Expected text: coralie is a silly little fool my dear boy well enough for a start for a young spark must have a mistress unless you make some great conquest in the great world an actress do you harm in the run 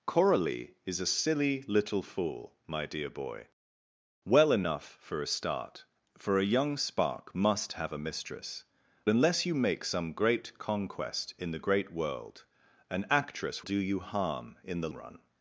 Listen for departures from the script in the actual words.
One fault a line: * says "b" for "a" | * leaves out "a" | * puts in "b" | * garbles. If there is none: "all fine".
all fine